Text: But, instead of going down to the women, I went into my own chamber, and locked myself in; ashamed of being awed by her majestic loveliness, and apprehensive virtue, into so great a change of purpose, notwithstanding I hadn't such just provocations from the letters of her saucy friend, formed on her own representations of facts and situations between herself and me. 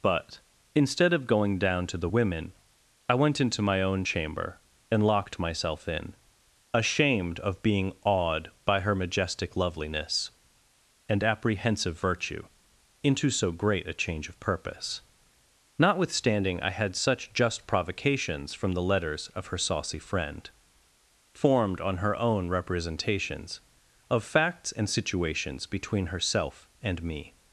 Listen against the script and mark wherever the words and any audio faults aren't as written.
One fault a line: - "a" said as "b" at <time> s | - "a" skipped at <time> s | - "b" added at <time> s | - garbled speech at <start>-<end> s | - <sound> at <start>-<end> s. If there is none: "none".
- "hadn't" said as "had" at 16.7 s